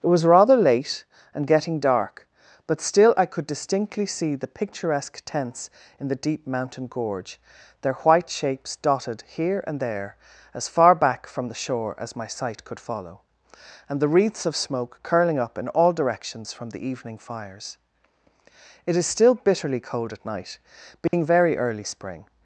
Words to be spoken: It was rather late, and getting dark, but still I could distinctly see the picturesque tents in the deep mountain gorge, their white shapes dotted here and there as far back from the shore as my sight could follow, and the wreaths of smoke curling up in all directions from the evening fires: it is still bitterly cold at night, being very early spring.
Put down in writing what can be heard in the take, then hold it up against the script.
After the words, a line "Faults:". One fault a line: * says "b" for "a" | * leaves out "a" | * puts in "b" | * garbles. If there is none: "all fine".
It was rather late, and getting dark, but still I could distinctly see the picturesque tents in the deep mountain gorge, their white shapes dotted here and there as far back from the shore as my sight could follow, and the wreaths of smoke curling up in all directions from the evening fires: it is still bitterly cold at night, being very early spring.
Faults:
all fine